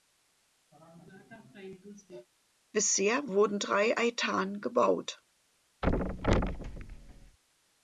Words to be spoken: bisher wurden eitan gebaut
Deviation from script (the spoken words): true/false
true